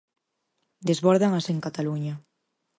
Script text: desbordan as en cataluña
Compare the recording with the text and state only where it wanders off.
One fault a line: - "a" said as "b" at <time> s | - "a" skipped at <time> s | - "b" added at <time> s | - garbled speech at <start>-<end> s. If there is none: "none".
none